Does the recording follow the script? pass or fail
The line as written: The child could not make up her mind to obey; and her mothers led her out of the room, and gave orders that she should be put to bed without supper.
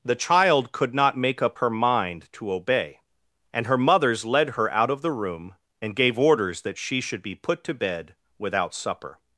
pass